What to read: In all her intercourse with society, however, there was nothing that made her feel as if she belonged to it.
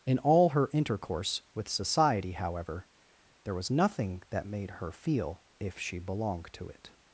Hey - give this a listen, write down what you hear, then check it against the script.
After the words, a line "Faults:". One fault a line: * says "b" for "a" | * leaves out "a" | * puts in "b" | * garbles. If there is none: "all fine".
In all her intercourse with society, however, there was nothing that made her feel if she belonged to it.
Faults:
* leaves out "as"